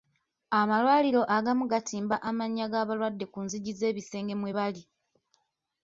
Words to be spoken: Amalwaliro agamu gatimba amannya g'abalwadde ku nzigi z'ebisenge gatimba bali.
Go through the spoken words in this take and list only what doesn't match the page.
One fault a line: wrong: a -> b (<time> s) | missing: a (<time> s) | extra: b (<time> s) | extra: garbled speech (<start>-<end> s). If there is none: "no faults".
wrong: gatimba -> mwe (4.4 s)